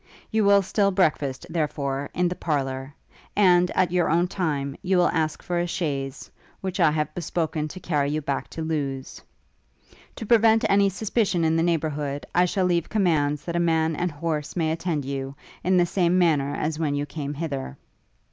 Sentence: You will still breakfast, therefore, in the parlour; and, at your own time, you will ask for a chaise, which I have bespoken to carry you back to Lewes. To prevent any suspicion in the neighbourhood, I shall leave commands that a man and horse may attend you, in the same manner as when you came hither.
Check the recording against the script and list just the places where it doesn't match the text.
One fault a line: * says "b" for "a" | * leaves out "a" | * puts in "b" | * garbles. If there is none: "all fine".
all fine